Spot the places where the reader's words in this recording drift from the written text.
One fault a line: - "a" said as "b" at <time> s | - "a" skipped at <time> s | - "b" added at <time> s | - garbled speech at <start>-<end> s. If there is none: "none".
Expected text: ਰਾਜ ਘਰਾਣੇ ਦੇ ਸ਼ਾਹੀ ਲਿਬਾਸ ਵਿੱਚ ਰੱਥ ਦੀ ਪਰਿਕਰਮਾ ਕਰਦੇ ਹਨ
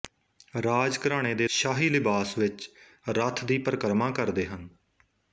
none